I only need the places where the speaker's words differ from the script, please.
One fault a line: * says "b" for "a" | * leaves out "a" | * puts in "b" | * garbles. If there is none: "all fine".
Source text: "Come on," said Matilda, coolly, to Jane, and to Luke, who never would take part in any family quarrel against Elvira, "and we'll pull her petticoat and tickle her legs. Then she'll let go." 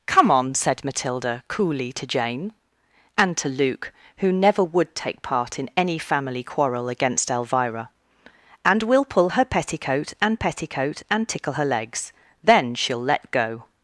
* puts in "petticoat and"